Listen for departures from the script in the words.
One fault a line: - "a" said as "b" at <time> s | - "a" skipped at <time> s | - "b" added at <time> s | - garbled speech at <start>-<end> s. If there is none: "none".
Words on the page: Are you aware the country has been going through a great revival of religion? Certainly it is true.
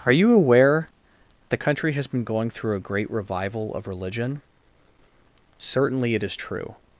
none